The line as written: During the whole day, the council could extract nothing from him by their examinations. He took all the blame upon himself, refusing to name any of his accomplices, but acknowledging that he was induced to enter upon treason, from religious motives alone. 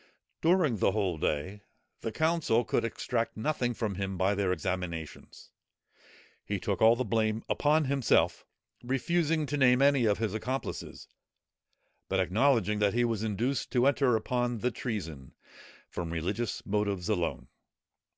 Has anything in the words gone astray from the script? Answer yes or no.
yes